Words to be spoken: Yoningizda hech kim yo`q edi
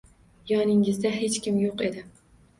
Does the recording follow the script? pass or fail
pass